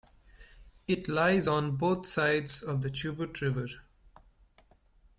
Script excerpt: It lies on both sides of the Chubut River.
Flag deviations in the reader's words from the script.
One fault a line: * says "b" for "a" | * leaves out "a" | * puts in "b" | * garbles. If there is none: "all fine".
all fine